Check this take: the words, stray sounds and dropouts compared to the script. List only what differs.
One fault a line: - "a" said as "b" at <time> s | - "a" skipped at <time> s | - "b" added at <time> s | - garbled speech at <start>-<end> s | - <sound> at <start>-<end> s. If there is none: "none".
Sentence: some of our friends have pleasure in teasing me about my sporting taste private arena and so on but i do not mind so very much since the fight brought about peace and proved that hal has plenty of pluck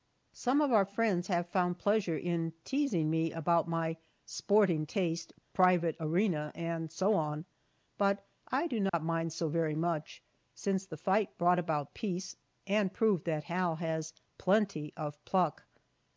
- "found" added at 1.5 s
- dropout at 8.9-8.9 s